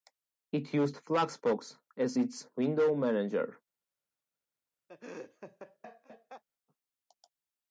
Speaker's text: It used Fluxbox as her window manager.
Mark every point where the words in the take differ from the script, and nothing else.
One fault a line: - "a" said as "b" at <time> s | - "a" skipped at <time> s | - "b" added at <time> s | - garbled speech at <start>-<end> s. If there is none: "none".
- "her" said as "its" at 2.2 s